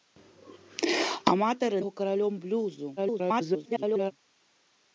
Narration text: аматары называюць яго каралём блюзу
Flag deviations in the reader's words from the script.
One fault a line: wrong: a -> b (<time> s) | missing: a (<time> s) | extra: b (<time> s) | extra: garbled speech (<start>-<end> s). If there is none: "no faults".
missing: называюць (1.8 s)
extra: garbled speech (3.0-4.1 s)